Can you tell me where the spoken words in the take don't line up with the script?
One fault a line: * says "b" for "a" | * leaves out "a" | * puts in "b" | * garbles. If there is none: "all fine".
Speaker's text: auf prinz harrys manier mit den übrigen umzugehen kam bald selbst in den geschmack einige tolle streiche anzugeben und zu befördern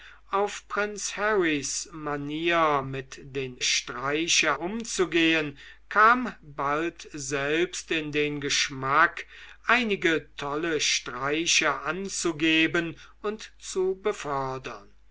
* says "streiche" for "übrigen"